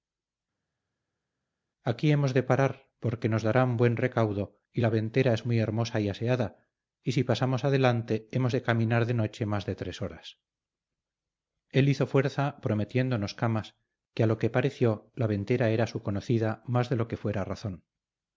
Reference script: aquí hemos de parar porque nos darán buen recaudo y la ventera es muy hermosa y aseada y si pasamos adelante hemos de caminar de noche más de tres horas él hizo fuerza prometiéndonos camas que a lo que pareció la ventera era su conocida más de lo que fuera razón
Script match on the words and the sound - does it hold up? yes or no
yes